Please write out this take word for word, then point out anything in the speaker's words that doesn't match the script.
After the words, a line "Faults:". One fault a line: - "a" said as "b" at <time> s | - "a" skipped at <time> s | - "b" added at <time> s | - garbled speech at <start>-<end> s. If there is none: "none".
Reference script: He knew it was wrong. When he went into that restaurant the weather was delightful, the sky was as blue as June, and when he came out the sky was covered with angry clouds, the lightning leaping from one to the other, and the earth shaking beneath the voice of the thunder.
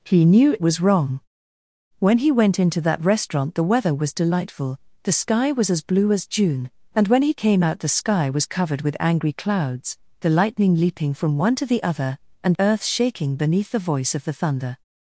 He knew it was wrong. When he went into that restaurant the weather was delightful, the sky was as blue as June, and when he came out the sky was covered with angry clouds, the lightning leaping from one to the other, and earth shaking beneath the voice of the thunder.
Faults:
- "the" skipped at 12.5 s